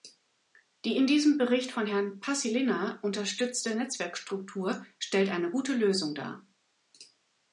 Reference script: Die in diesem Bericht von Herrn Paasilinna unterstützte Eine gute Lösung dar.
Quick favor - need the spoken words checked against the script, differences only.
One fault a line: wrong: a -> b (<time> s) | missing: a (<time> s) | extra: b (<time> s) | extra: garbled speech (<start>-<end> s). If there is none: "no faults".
extra: Netzwerkstruktur stellt (3.8 s)